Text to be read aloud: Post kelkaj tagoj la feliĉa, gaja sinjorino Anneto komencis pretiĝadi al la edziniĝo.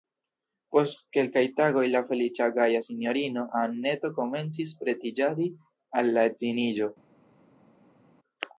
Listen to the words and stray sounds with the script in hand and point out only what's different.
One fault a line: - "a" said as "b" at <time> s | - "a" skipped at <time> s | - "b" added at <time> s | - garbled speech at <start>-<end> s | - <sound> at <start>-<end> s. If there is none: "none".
none